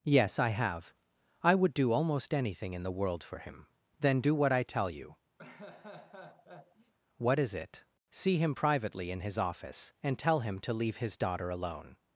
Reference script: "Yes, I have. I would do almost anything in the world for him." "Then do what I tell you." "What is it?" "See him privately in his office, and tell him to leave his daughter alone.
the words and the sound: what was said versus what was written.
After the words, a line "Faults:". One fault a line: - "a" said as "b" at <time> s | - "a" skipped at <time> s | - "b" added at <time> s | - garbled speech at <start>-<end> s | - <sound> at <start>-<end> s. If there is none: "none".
"Yes, I have. I would do almost anything in the world for him." "Then do what I tell you." "What is it?" "See him privately in his office, and tell him to leave his daughter alone.
Faults:
- laugh at 5.4-6.9 s